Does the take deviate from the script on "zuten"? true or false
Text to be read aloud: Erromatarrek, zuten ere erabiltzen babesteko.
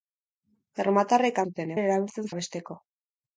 false